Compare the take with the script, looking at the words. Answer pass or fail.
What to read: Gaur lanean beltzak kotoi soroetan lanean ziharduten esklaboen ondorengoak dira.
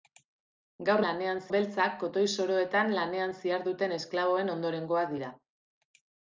pass